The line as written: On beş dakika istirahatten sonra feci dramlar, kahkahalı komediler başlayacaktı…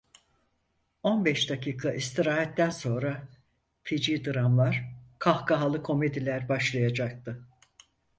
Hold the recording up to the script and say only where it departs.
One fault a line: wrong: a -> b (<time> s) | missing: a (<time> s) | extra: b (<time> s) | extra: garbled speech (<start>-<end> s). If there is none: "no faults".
no faults